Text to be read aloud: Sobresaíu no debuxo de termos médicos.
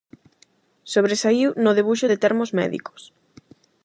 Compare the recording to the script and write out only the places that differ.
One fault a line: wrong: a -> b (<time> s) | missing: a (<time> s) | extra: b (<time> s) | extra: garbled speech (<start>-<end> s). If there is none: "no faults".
no faults